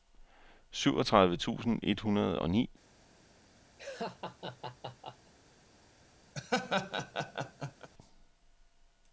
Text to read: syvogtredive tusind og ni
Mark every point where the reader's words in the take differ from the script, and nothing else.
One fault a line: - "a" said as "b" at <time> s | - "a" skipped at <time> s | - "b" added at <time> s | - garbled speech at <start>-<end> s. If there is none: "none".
- "et hundrede" added at 1.8 s